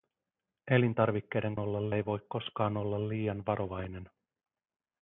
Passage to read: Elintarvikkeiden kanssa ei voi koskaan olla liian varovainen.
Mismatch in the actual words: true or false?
true